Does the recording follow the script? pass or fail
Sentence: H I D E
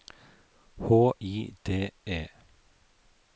pass